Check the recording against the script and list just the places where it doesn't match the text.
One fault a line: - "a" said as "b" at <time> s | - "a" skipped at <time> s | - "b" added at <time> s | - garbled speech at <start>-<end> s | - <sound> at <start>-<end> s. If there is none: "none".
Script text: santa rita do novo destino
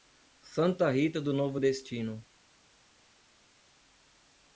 none